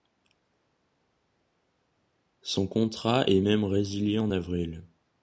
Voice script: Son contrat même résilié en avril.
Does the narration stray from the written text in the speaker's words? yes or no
yes